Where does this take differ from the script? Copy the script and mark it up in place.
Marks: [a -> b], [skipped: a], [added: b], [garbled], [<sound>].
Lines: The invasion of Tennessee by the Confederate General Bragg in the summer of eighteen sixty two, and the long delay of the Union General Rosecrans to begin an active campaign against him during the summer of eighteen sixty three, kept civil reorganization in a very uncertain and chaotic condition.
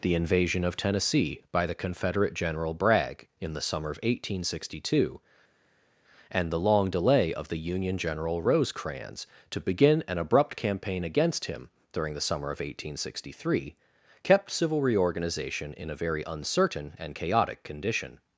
The invasion of Tennessee by the Confederate General Bragg in the summer of eighteen sixty two, and the long delay of the Union General Rosecrans to begin an [active -> abrupt] campaign against him during the summer of eighteen sixty three, kept civil reorganization in a very uncertain and chaotic condition.